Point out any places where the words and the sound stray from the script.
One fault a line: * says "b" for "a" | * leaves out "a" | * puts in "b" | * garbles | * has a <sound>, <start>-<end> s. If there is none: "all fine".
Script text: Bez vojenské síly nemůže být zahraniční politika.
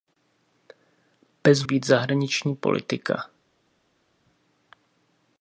* leaves out "vojenské síly nemůže"